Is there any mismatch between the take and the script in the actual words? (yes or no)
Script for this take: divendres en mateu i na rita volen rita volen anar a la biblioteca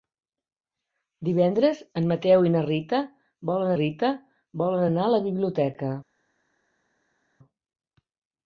no